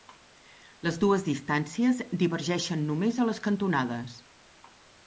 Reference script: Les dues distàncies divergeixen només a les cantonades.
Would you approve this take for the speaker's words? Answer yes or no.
yes